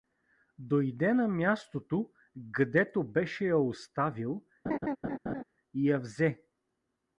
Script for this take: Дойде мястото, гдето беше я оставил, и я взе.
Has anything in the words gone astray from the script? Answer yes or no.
yes